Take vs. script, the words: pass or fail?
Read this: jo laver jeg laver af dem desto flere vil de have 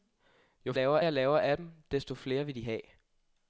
pass